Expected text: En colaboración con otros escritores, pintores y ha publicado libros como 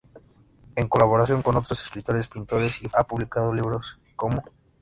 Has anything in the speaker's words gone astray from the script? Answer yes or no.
no